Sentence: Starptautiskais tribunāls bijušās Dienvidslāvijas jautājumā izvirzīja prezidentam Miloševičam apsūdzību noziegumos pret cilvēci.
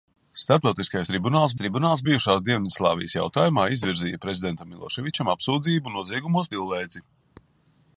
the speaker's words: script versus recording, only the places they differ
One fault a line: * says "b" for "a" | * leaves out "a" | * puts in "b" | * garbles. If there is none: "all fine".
* puts in "tribunāls"
* leaves out "pret"